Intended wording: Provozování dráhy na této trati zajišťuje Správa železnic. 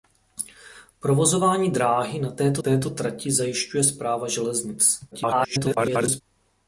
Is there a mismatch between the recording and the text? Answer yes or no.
yes